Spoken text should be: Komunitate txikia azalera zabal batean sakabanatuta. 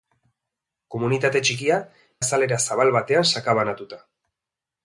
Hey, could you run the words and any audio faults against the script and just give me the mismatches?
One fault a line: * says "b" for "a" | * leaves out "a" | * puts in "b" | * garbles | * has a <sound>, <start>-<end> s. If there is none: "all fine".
all fine